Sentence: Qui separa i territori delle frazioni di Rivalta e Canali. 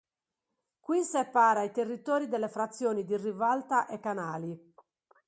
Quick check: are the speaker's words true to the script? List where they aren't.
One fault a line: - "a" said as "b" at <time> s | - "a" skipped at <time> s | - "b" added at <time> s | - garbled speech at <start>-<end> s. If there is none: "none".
none